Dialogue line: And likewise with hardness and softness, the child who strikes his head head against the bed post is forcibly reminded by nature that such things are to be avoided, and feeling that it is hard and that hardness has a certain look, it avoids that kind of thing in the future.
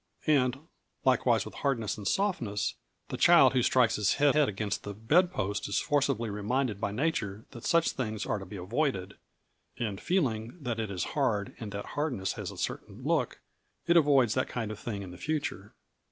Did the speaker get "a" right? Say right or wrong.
right